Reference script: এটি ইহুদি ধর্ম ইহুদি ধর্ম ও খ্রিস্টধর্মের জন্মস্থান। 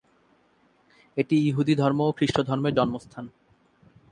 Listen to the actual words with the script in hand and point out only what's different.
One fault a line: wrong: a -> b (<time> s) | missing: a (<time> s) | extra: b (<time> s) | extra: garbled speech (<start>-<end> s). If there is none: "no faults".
missing: ইহুদি ধর্ম (2.0 s)